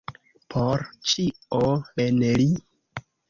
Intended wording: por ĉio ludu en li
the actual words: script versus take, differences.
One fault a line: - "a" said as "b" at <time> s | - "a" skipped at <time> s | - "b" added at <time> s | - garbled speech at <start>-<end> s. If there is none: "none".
- "ludu" skipped at 1.6 s